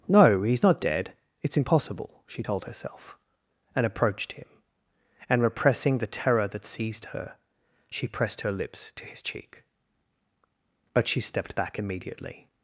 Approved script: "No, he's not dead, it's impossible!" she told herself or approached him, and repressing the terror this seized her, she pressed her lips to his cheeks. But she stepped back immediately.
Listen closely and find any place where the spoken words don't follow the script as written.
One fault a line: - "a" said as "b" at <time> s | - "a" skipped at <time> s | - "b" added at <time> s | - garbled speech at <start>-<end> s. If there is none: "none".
- "or" said as "and" at 3.7 s
- "this" said as "that" at 6.5 s
- "cheeks" said as "cheek" at 9.2 s